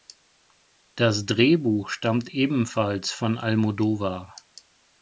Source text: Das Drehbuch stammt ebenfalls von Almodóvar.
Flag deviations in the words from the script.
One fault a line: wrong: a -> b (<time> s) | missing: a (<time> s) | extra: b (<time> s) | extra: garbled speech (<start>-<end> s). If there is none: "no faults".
no faults